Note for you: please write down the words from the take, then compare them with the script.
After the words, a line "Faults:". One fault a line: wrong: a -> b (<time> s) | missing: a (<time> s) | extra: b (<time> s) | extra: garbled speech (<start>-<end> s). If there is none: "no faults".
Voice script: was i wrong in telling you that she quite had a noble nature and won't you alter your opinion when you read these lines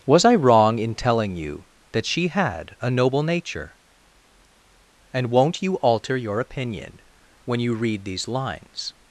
was i wrong in telling you that she had a noble nature and won't you alter your opinion when you read these lines
Faults:
missing: quite (2.3 s)